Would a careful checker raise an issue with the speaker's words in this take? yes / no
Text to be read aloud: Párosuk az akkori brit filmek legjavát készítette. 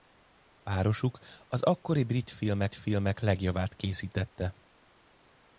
yes